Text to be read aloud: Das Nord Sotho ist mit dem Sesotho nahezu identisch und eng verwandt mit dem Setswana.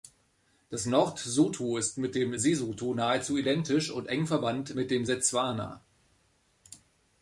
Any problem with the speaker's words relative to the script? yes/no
no